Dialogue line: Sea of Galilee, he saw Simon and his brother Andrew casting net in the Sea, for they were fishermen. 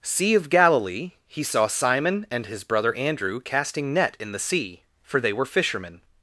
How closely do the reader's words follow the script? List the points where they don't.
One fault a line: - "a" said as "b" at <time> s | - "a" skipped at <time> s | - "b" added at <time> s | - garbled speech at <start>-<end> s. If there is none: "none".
none